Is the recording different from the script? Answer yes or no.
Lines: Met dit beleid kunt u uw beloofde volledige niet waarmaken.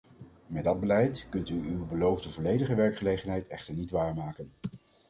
yes